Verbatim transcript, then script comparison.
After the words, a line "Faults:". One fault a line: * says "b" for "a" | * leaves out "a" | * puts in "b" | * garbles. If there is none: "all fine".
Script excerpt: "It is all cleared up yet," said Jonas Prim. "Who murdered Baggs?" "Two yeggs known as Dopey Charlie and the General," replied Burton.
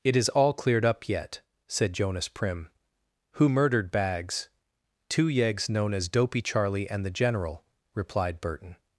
"It is all cleared up yet," said Jonas Prim. "Who murdered Baggs?" "Two yeggs known as Dopey Charlie and the General," replied Burton.
Faults:
all fine